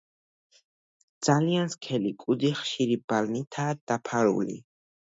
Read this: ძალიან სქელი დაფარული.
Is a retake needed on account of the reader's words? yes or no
yes